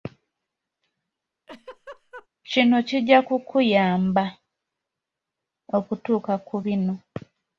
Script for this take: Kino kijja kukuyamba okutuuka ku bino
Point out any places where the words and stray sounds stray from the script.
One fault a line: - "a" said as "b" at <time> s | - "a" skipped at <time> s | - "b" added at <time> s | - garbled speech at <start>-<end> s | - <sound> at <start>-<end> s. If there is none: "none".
- laugh at 1.5-2.3 s